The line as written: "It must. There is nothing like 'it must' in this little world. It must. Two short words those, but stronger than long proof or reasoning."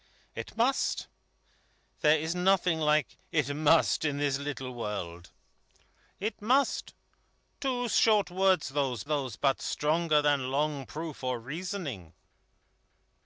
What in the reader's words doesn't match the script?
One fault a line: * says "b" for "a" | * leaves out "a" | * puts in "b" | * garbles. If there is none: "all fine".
* puts in "those"